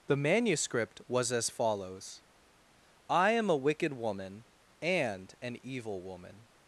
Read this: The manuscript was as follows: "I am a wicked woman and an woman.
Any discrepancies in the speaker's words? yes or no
yes